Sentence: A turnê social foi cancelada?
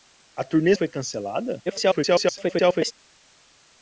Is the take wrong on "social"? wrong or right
wrong